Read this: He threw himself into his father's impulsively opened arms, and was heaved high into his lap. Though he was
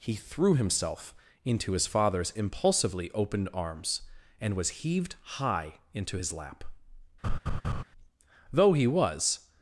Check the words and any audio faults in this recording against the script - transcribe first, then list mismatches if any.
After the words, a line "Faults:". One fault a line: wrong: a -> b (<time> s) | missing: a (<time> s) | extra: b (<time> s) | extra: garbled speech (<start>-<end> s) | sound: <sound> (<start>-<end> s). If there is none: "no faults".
He threw himself into his father's impulsively opened arms, and was heaved high into his lap. Though he was
Faults:
sound: laugh (7.2-7.8 s)